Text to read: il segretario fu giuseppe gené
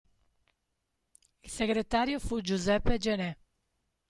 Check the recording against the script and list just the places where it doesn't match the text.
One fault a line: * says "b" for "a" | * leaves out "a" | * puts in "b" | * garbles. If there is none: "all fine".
all fine